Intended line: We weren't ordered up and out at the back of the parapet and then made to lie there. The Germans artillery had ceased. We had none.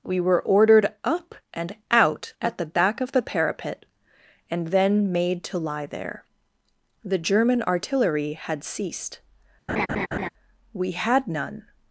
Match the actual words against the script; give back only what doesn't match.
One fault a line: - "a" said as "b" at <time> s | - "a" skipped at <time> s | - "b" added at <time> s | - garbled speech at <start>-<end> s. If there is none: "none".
- "weren't" said as "were" at 0.2 s
- "Germans" said as "German" at 7.2 s